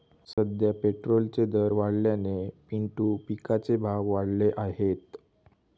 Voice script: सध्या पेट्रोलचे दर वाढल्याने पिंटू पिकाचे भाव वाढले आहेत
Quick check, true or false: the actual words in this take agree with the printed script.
true